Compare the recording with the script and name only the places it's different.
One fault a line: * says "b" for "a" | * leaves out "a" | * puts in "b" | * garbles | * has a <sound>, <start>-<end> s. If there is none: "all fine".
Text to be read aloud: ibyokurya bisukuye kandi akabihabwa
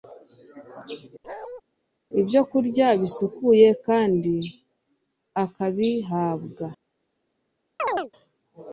* has a bark, 1.2-1.6 s
* has a chirp, 7.8-8.1 s